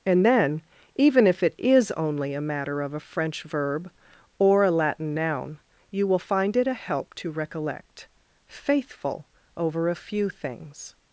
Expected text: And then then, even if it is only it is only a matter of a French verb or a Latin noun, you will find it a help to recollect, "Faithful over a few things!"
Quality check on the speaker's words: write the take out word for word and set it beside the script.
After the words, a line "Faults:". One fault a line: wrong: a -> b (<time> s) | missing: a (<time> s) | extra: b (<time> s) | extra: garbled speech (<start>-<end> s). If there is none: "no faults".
And then, even if it is only a matter of a French verb or a Latin noun, you will find it a help to recollect, "Faithful over a few things!"
Faults:
missing: then (0.6 s)
missing: it is only (2.3 s)